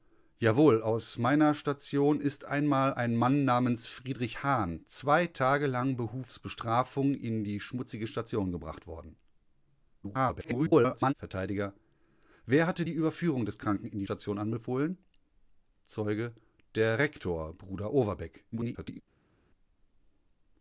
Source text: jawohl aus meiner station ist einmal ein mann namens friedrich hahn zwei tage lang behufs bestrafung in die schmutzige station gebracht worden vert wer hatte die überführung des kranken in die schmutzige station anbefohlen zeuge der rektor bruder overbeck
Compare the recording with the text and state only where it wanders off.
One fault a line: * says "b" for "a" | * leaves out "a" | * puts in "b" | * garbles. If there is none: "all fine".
* garbles
* leaves out "schmutzige"
* garbles